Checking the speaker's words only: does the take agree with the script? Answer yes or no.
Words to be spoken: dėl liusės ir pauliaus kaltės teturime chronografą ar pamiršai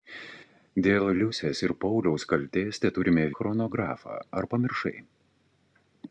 yes